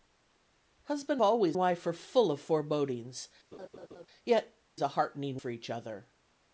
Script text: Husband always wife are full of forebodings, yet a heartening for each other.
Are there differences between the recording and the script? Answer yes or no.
no